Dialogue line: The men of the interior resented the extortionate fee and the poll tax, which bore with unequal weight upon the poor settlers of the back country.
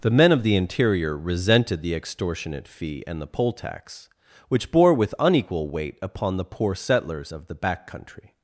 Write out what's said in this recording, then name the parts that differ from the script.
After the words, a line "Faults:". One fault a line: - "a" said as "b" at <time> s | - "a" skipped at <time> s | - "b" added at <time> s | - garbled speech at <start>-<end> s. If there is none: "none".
The men of the interior resented the extortionate fee and the poll tax, which bore with unequal weight upon the poor settlers of the back country.
Faults:
none